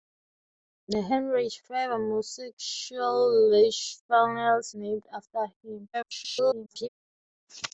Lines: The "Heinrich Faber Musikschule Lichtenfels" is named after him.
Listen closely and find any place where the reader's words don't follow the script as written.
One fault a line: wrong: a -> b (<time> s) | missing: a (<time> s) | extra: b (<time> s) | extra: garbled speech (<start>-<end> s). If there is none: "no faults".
missing: is (4.7 s)
extra: garbled speech (5.9-6.9 s)